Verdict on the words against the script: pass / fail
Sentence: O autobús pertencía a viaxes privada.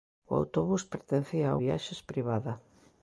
pass